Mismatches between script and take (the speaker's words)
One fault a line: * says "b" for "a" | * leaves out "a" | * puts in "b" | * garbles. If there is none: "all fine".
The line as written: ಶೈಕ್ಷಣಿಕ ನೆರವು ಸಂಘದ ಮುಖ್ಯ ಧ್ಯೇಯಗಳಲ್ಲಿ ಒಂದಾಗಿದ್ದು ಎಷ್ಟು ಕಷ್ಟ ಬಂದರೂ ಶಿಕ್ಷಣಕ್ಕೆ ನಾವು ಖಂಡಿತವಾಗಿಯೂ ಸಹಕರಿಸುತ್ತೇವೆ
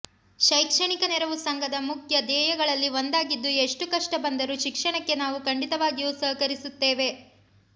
all fine